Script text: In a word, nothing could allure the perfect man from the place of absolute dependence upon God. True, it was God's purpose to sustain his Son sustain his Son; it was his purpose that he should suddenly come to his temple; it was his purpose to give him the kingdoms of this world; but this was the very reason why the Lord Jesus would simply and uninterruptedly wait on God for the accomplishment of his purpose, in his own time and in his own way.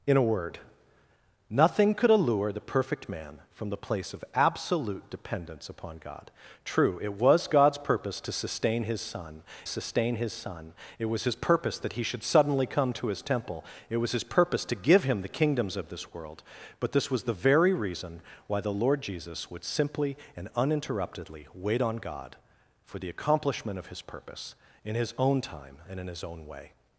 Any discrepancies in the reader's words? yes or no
no